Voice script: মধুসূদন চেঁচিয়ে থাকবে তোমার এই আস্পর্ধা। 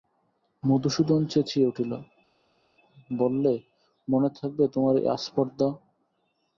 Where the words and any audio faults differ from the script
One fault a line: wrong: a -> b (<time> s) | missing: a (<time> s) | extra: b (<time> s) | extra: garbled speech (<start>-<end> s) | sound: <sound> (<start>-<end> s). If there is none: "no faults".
extra: উঠল বললে মনে (1.7 s)